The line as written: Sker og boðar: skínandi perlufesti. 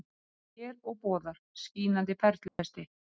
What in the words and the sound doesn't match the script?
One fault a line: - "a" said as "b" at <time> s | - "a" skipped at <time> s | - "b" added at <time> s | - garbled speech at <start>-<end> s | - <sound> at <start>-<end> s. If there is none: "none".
- dropout at 2.5-2.6 s